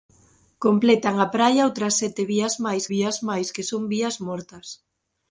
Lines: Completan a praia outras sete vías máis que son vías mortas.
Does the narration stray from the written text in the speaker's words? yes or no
yes